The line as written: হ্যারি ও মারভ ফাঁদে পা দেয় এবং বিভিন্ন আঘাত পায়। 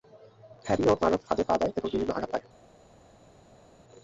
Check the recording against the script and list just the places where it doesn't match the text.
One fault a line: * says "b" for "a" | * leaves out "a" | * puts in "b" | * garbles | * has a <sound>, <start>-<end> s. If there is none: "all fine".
all fine